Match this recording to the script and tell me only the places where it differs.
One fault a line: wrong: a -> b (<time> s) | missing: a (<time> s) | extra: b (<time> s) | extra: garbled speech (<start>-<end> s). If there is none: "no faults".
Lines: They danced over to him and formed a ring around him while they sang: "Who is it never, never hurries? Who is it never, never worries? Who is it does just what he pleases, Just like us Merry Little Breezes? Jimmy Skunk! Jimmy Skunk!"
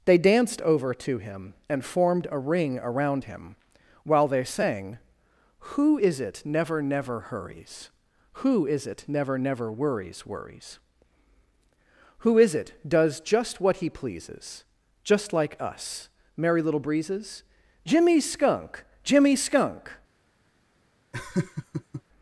extra: worries (10.3 s)